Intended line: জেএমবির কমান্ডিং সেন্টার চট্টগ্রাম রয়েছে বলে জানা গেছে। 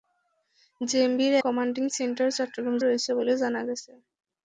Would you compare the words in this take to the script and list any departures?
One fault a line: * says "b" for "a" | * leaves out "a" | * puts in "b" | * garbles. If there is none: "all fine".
all fine